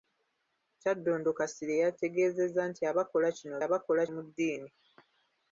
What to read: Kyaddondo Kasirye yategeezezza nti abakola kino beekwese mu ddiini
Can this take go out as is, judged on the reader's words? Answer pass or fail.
fail